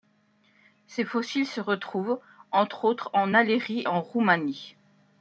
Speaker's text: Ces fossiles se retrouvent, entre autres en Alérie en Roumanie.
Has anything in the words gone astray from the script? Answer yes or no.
no